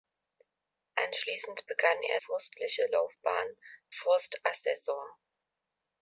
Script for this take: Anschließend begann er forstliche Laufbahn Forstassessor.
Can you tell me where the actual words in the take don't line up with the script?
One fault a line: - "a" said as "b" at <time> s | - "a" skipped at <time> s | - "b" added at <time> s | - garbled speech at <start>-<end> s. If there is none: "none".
none